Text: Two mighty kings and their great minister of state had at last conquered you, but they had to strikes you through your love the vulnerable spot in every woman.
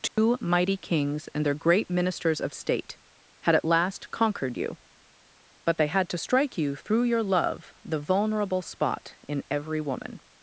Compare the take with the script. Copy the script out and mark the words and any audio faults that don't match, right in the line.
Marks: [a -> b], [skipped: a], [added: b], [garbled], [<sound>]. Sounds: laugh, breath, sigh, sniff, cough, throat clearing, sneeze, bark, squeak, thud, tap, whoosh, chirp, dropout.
Two [dropout] mighty kings and their great [minister -> ministers] of state had at last conquered you, but they had to [strikes -> strike] you through your love the vulnerable spot in every woman.